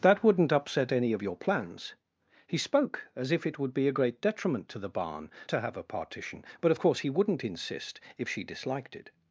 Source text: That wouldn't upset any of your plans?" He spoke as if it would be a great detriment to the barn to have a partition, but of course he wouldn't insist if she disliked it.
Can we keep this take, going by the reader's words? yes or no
yes